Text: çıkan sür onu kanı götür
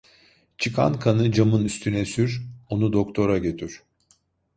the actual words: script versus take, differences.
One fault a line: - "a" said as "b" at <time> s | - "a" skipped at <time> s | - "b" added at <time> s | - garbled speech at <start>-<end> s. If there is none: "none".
- "kanı camın üstüne" added at 1.0 s
- "kanı" said as "doktora" at 2.9 s